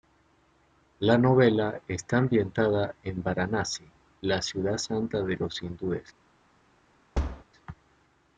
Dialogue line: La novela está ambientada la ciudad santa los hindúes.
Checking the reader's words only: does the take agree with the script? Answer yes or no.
no